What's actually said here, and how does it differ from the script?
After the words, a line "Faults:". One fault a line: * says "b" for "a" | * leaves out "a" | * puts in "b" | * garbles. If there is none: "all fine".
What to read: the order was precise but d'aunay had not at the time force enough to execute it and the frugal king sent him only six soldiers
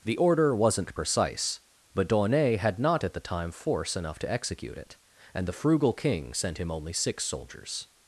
the order wasn't precise but d'aunay had not at the time force enough to execute it and the frugal king sent him only six soldiers
Faults:
* says "wasn't" for "was"